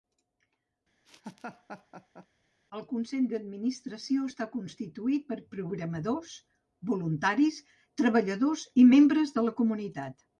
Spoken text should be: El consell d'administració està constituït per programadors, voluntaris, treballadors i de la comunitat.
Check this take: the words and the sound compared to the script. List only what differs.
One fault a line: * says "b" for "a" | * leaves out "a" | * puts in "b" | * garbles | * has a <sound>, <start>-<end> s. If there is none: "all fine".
* has a laugh, 1.1-2.3 s
* puts in "membres"